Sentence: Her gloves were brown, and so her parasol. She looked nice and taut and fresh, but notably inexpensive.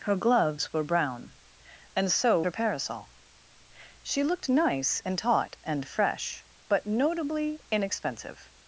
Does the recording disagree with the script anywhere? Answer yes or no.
no